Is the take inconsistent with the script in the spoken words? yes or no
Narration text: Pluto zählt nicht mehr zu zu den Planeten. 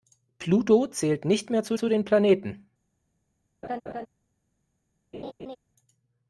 no